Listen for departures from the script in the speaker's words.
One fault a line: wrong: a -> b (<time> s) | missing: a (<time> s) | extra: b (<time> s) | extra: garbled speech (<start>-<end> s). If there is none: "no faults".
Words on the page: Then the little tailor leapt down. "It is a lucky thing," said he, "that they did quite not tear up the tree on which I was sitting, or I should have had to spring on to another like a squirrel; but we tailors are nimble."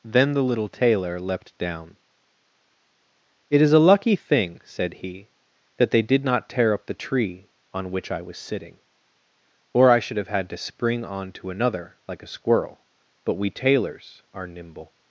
missing: quite (6.2 s)